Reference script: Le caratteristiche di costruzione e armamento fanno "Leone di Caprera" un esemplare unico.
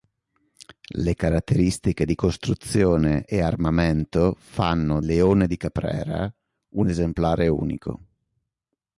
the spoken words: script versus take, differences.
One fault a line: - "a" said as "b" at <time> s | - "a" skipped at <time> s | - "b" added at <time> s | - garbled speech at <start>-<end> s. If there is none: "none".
none